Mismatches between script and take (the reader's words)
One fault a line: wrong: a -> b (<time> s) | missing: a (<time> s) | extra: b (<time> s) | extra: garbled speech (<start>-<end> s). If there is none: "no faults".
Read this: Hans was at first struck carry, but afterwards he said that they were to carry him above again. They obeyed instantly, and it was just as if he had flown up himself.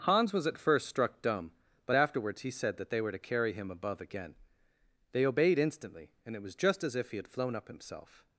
wrong: carry -> dumb (1.2 s)